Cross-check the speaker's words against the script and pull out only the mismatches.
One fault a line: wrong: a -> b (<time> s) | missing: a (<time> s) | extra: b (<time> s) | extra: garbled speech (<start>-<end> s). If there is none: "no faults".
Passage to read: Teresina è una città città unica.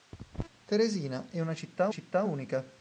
no faults